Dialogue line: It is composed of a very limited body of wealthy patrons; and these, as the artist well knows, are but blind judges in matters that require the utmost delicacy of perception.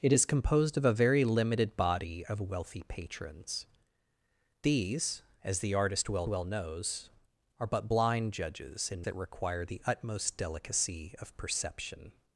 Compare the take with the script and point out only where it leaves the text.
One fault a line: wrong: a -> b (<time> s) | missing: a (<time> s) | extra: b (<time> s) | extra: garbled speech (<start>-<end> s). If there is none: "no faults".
missing: and (3.7 s)
extra: well (6.3 s)
missing: matters (9.1 s)